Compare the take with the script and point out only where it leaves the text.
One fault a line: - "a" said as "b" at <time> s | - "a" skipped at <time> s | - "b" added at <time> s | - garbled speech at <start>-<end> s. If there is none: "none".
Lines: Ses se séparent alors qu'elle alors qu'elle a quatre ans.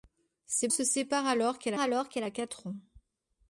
none